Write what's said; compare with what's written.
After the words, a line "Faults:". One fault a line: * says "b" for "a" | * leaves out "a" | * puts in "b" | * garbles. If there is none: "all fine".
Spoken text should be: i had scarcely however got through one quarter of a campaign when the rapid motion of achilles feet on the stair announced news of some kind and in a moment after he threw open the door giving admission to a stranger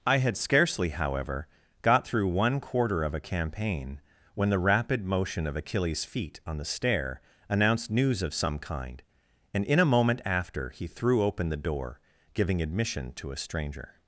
i had scarcely however got through one quarter of a campaign when the rapid motion of achilles feet on the stair announced news of some kind and in a moment after he threw open the door giving admission to a stranger
Faults:
all fine